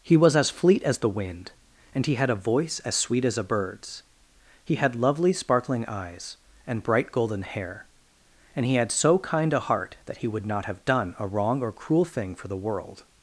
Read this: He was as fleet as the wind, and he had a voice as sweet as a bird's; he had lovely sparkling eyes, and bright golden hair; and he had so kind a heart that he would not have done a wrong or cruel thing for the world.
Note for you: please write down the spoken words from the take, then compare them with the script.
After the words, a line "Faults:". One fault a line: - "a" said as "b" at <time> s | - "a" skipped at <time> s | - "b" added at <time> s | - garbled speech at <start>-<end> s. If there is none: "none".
He was as fleet as the wind, and he had a voice as sweet as a bird's; he had lovely sparkling eyes, and bright golden hair; and he had so kind a heart that he would not have done a wrong or cruel thing for the world.
Faults:
none